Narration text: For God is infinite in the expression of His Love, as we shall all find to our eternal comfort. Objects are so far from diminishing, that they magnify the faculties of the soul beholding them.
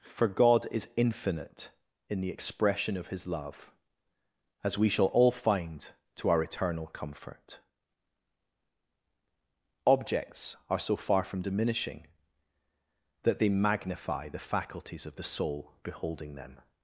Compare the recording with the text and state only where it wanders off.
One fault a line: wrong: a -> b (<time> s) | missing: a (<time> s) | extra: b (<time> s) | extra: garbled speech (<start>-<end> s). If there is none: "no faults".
no faults